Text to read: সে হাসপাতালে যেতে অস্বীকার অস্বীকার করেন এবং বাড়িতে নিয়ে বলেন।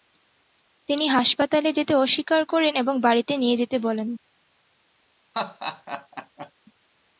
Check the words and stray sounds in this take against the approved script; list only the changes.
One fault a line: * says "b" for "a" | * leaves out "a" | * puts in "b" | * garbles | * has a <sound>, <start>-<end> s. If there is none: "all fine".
* says "তিনি" for "সে"
* leaves out "অস্বীকার"
* puts in "যেতে"
* has a laugh, 5.3-6.5 s